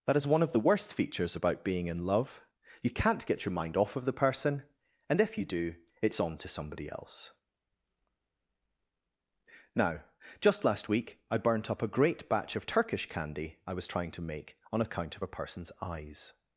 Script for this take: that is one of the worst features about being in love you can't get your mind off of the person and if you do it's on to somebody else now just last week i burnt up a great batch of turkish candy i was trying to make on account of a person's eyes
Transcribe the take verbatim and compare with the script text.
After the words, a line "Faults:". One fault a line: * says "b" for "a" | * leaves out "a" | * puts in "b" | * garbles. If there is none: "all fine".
that is one of the worst features about being in love you can't get your mind off of the person and if you do it's on to somebody else now just last week i burnt up a great batch of turkish candy i was trying to make on account of a person's eyes
Faults:
all fine